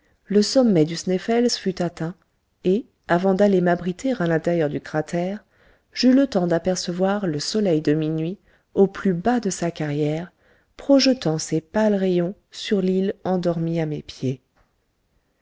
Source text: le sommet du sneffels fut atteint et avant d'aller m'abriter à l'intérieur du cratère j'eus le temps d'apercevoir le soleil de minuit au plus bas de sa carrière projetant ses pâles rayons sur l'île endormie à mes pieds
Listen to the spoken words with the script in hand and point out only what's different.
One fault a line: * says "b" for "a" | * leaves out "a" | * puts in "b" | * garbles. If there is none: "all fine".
all fine